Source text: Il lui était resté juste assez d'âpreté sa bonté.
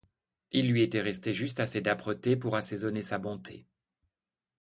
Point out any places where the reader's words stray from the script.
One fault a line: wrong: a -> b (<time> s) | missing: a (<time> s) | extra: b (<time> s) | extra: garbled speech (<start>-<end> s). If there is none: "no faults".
extra: pour assaisonner (2.4 s)